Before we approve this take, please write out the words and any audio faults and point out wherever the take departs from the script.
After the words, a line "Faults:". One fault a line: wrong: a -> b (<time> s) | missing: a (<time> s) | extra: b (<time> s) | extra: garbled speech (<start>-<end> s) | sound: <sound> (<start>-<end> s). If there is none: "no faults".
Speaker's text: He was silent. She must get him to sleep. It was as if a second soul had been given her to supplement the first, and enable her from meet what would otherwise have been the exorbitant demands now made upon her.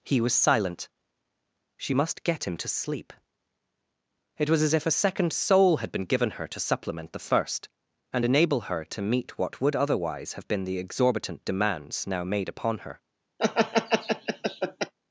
He was silent. She must get him to sleep. It was as if a second soul had been given her to supplement the first, and enable her to meet what would otherwise have been the exorbitant demands now made upon her.
Faults:
wrong: from -> to (8.8 s)
sound: laugh (13.4-14.9 s)